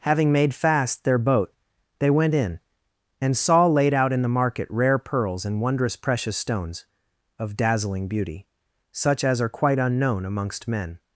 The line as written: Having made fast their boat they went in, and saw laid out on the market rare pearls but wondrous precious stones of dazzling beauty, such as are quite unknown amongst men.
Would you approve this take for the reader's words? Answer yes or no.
no